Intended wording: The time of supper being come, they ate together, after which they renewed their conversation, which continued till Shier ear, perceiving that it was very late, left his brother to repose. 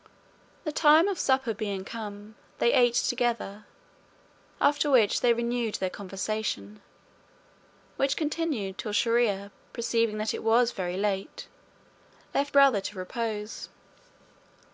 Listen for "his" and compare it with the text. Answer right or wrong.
wrong